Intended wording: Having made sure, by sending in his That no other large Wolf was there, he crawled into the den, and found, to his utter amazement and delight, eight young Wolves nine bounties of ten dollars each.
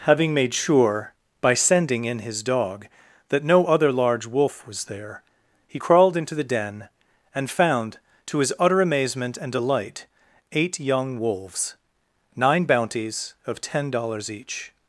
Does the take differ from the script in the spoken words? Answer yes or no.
yes